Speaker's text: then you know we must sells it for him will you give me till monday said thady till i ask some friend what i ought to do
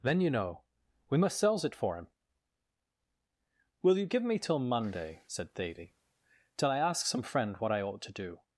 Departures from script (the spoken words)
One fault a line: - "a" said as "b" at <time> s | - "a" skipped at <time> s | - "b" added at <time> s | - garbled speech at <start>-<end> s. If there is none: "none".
none